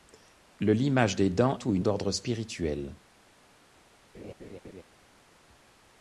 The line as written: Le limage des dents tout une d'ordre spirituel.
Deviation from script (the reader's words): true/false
false